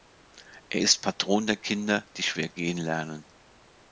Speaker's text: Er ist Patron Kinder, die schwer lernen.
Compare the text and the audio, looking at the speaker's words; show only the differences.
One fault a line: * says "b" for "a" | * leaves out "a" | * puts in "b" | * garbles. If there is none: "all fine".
* puts in "der"
* puts in "gehen"